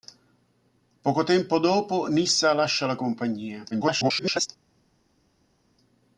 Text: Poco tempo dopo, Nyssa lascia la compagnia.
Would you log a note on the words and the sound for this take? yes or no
yes